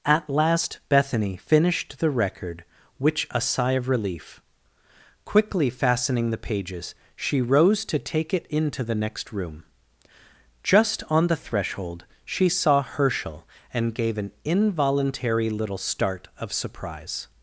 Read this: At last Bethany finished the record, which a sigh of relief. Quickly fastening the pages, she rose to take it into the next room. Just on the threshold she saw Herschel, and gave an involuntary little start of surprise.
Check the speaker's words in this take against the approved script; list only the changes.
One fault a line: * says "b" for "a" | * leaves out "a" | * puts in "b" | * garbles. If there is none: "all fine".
all fine